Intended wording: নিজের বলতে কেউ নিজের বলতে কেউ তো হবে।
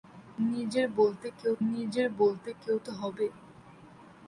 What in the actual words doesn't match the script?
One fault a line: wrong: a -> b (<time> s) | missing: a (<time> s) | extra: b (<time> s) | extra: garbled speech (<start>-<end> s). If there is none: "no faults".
no faults